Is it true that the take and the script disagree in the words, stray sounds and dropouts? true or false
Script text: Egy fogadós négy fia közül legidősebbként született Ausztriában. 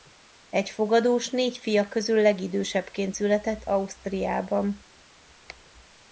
false